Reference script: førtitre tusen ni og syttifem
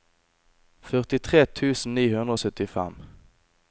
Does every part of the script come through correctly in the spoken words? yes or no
no